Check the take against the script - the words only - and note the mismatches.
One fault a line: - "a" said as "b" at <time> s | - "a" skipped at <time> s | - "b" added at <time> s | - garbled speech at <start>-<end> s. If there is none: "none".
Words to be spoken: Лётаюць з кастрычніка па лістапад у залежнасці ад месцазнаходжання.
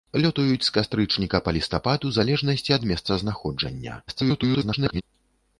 - garbled speech at 4.1-5.0 s